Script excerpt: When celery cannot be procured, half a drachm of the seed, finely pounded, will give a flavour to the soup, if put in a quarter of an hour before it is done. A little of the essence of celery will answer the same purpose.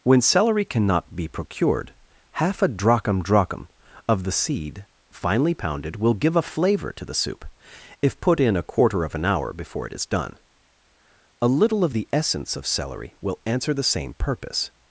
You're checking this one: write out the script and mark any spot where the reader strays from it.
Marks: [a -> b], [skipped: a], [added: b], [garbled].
When celery cannot be procured, half a drachm [added: drachm] of the seed, finely pounded, will give a flavour to the soup, if put in a quarter of an hour before it is done. A little of the essence of celery will answer the same purpose.